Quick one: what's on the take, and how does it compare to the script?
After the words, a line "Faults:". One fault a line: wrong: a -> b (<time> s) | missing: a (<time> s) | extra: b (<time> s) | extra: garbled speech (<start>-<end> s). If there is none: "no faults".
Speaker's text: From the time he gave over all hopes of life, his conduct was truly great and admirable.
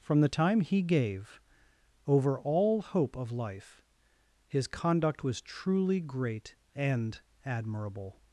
From the time he gave over all hope of life, his conduct was truly great and admirable.
Faults:
wrong: hopes -> hope (2.8 s)